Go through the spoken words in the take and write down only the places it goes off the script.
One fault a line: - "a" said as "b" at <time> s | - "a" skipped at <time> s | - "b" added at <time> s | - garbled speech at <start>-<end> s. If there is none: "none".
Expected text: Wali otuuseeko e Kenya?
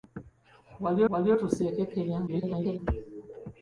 - "wali" added at 1.1 s
- garbled speech at 2.3-2.8 s